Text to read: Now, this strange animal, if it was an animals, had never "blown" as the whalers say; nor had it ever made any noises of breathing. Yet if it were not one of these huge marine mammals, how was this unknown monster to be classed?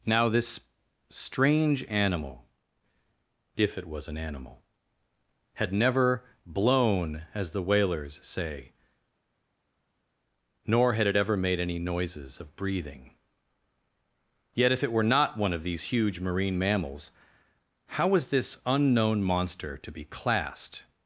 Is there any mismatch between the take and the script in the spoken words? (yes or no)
yes